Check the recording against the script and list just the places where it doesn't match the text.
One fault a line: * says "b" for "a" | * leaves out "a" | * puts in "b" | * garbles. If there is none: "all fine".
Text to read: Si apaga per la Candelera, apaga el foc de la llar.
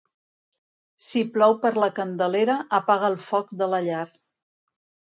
* says "plou" for "apaga"